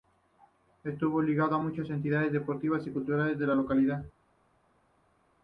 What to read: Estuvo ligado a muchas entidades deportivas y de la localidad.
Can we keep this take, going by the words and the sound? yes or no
no